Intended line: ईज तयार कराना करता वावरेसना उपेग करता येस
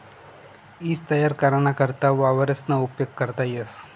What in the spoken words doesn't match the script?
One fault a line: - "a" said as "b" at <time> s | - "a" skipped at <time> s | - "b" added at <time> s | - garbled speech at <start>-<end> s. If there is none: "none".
none